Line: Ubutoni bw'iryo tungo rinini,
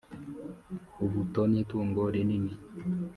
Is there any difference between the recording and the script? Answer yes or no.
yes